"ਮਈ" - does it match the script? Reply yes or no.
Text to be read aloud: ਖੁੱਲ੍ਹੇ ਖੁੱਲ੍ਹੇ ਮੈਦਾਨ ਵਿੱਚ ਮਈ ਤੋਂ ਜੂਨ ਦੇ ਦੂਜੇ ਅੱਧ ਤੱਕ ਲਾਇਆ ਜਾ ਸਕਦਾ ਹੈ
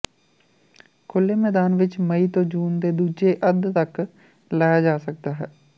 yes